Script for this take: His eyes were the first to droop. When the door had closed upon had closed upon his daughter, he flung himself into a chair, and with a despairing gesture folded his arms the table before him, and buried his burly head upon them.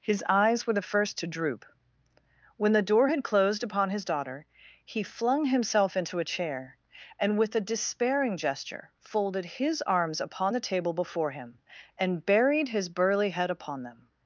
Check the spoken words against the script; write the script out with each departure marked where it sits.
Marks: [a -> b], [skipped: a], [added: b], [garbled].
His eyes were the first to droop. When the door had closed upon [skipped: had closed upon] his daughter, he flung himself into a chair, and with a despairing gesture folded his arms [added: upon] the table before him, and buried his burly head upon them.